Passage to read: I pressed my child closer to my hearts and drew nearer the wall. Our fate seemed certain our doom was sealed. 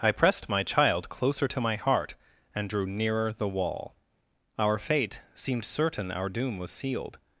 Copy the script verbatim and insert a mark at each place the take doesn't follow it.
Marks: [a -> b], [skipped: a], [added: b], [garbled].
I pressed my child closer to my [hearts -> heart] and drew nearer the wall. Our fate seemed certain our doom was sealed.